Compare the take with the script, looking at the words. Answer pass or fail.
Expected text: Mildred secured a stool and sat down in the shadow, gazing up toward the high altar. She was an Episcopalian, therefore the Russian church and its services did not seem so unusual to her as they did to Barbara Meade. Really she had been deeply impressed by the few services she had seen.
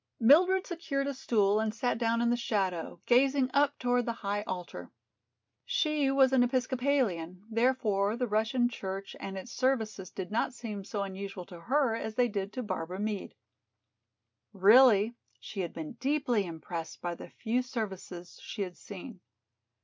pass